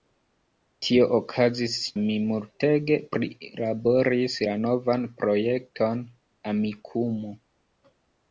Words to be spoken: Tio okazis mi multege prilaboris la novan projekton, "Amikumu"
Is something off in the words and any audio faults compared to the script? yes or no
no